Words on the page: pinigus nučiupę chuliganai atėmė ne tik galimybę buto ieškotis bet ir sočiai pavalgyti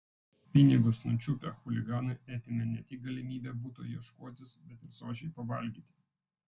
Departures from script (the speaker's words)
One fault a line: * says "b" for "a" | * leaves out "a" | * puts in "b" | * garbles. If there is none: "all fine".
all fine